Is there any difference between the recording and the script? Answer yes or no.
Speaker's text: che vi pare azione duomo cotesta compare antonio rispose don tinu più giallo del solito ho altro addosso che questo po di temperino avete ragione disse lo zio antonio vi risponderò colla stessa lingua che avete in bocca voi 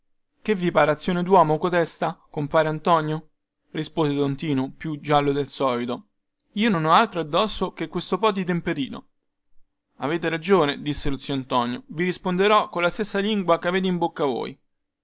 yes